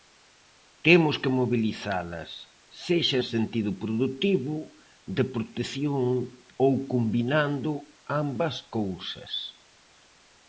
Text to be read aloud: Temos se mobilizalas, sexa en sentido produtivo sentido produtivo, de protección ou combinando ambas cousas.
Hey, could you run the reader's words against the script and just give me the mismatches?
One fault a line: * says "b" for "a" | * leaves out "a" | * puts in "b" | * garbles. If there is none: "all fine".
* says "que" for "se"
* leaves out "sentido produtivo"